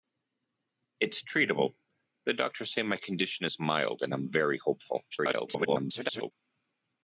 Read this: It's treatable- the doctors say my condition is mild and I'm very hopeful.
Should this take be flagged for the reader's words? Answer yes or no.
yes